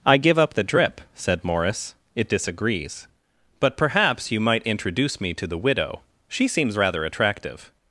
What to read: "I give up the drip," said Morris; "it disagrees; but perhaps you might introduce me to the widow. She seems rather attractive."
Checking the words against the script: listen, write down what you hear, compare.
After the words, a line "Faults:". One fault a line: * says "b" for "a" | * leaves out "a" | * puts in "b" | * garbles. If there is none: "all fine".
"I give up the drip," said Morris; "it disagrees; but perhaps you might introduce me to the widow. She seems rather attractive."
Faults:
all fine